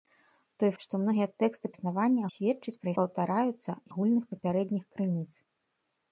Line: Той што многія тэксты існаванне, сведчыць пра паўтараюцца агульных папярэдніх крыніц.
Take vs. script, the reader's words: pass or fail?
pass